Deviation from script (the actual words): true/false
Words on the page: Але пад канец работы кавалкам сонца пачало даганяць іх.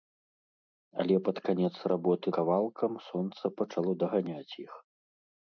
false